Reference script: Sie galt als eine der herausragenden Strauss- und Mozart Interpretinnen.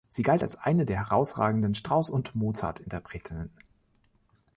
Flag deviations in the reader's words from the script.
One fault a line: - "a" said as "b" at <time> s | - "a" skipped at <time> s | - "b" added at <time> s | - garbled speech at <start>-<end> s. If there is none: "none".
none